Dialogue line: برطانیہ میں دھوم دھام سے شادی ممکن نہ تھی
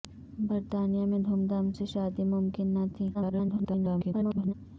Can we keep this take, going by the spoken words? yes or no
no